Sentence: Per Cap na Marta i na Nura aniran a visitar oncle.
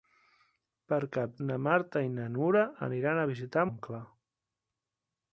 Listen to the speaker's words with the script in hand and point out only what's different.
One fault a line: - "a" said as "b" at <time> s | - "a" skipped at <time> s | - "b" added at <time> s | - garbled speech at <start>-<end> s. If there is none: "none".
none